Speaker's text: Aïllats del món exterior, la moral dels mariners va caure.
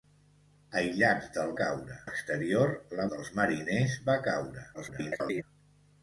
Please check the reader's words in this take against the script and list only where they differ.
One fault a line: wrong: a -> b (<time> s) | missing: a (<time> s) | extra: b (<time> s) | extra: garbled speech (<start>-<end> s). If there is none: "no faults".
wrong: món -> caure (1.6 s)
missing: moral (3.1 s)
extra: garbled speech (4.7-5.4 s)